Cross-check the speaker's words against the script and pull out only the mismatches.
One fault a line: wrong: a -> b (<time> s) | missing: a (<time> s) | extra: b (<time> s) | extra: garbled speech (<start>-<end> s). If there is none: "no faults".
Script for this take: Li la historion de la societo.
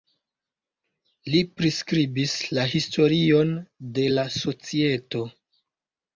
extra: priskribis (1.6 s)